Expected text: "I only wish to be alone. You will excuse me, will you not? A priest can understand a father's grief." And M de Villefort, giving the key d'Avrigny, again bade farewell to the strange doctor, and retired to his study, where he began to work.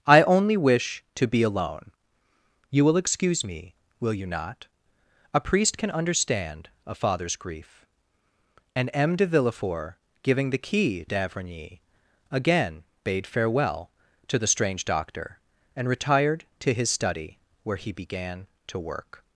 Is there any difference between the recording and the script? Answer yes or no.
no